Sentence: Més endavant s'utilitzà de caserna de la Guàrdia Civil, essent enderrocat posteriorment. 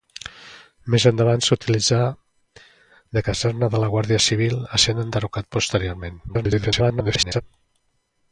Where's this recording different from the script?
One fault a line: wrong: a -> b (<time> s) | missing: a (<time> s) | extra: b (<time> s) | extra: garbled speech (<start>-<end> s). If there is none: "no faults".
extra: garbled speech (6.3-7.4 s)